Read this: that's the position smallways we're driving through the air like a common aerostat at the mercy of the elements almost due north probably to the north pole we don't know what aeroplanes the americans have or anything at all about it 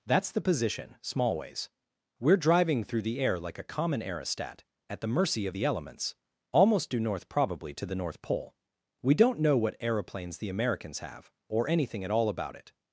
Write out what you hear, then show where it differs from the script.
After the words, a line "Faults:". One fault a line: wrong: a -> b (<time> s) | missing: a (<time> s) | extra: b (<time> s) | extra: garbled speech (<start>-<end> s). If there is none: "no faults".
that's the position smallways we're driving through the air like a common aerostat at the mercy of the elements almost due north probably to the north pole we don't know what aeroplanes the americans have or anything at all about it
Faults:
no faults